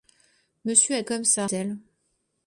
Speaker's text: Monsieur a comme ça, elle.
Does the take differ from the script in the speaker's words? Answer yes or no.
no